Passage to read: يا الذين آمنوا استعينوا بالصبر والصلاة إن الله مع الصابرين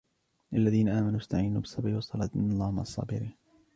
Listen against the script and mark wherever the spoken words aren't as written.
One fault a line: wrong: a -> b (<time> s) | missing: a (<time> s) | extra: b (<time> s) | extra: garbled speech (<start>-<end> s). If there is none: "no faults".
no faults